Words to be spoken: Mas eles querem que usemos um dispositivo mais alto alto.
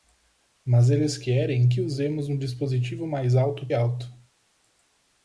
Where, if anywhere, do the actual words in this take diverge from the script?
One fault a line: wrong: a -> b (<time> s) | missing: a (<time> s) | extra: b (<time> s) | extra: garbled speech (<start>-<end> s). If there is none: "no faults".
no faults